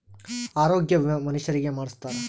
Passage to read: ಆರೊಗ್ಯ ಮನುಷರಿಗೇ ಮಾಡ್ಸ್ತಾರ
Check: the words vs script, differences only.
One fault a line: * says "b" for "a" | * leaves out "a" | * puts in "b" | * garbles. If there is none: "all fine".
* puts in "ವಿಮೆ"